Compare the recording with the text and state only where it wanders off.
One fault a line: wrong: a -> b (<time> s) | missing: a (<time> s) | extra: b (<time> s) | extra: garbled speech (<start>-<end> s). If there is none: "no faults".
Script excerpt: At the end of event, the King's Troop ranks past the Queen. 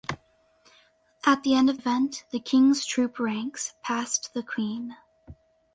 no faults